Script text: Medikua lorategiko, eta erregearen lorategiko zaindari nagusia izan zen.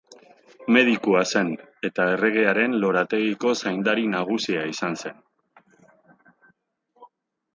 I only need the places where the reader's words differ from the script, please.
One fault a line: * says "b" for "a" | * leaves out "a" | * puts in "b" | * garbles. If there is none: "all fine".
* says "zen" for "lorategiko"